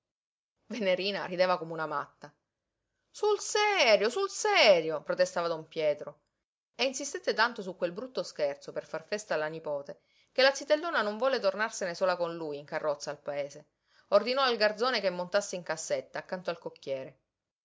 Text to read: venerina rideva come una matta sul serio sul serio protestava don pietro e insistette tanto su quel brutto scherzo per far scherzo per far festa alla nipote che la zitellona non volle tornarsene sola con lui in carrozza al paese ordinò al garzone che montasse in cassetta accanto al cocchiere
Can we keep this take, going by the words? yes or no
no